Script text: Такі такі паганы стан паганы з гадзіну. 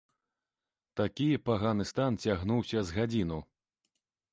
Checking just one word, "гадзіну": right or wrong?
right